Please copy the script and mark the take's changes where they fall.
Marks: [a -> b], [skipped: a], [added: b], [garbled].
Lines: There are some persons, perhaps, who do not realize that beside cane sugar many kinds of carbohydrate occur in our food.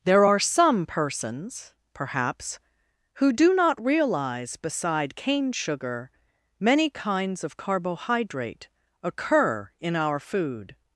There are some persons, perhaps, who do not realize [skipped: that] beside cane sugar many kinds of carbohydrate occur in our food.